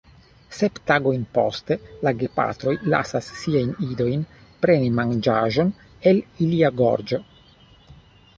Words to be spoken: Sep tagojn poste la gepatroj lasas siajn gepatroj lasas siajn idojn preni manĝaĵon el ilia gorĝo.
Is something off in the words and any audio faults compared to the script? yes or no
yes